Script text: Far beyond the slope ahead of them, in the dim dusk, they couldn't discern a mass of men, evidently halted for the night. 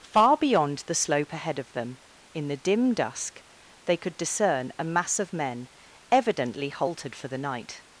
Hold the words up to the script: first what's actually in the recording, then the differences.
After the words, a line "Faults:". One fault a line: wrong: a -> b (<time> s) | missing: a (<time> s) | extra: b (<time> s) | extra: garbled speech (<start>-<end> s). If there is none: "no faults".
Far beyond the slope ahead of them, in the dim dusk, they could discern a mass of men, evidently halted for the night.
Faults:
wrong: couldn't -> could (4.0 s)